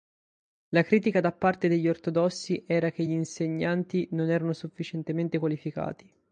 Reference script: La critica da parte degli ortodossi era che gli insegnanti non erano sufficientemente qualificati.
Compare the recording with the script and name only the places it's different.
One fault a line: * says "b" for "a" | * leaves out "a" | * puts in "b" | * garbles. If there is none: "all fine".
all fine